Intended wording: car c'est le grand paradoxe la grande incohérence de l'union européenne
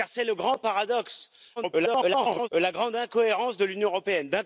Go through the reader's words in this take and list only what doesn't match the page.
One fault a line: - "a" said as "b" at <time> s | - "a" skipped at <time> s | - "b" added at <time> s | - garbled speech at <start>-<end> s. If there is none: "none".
- garbled speech at 1.6-2.5 s